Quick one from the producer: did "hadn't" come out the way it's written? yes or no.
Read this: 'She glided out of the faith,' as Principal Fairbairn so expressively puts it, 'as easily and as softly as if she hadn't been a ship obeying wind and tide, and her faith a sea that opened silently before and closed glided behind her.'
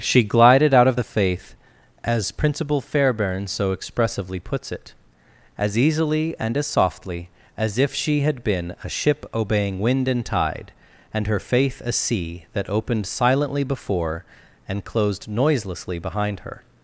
no